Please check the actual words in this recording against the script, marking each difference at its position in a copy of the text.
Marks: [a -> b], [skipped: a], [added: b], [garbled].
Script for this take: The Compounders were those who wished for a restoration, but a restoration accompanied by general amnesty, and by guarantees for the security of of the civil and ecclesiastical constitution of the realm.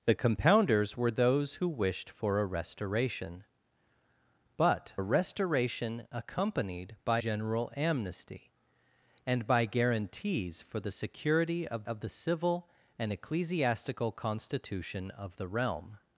The Compounders were those who wished for a restoration, but a restoration accompanied by general amnesty, and by guarantees for the security of of the civil and ecclesiastical constitution of the realm.